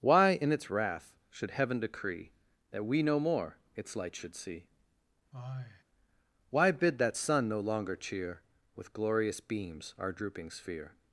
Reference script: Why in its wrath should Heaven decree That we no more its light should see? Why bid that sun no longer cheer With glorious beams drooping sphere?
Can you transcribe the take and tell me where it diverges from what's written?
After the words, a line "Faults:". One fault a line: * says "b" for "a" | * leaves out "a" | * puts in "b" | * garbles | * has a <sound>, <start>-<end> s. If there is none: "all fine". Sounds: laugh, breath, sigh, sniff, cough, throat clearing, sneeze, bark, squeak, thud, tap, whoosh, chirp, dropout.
Why in its wrath should Heaven decree That we no more its light should see? Why bid that sun no longer cheer With glorious beams our drooping sphere?
Faults:
* has a sigh, 5.3-5.8 s
* puts in "our"